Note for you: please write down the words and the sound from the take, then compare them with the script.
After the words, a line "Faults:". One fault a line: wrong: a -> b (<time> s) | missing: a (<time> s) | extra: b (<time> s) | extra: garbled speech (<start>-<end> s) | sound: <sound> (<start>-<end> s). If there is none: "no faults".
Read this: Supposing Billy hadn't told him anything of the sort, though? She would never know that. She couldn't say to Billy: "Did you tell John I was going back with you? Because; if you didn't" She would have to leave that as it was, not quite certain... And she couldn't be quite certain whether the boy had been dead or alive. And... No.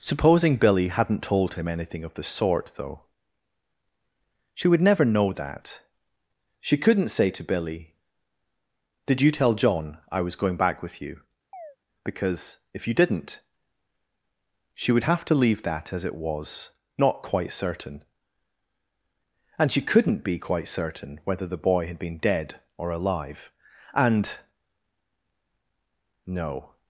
Supposing Billy hadn't told him anything of the sort, though? She would never know that. She couldn't say to Billy: "Did you tell John I was going back with you? Because; if you didn't" She would have to leave that as it was, not quite certain... And she couldn't be quite certain whether the boy had been dead or alive. And... No.
Faults:
sound: chirp (11.5-11.8 s)